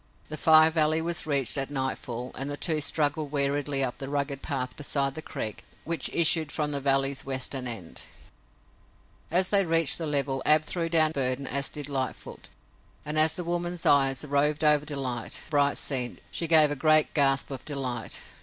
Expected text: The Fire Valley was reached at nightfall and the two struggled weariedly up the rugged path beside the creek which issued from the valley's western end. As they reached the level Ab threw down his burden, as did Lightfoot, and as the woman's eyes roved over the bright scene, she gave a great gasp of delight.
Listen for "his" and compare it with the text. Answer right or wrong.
wrong